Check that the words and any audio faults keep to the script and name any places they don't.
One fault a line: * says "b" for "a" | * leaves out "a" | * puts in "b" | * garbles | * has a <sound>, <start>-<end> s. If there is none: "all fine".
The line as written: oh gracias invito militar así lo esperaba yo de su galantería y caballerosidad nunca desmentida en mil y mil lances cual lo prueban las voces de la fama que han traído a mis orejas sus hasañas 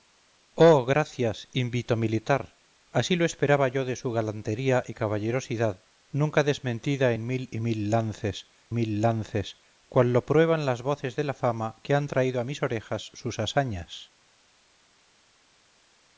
* puts in "mil lances"